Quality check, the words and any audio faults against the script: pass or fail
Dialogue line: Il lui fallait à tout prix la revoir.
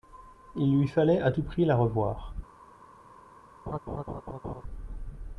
fail